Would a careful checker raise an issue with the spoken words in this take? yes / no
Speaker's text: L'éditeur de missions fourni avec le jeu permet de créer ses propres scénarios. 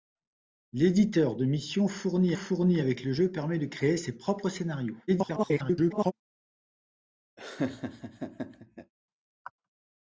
yes